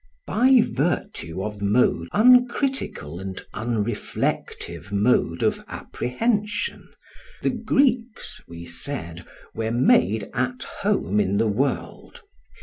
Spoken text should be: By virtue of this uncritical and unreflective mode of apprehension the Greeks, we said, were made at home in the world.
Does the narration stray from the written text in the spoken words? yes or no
yes